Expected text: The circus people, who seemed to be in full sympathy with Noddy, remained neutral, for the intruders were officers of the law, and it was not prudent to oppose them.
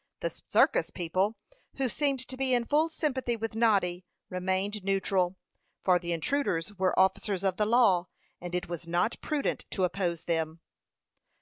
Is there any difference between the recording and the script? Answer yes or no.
no